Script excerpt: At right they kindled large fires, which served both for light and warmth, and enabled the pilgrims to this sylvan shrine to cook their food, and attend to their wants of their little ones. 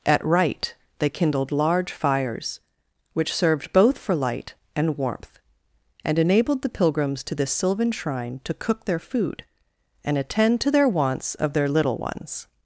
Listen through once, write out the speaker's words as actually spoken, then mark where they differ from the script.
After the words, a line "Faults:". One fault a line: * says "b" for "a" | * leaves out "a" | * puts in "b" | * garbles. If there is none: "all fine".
At right they kindled large fires, which served both for light and warmth, and enabled the pilgrims to this sylvan shrine to cook their food, and attend to their wants of their little ones.
Faults:
all fine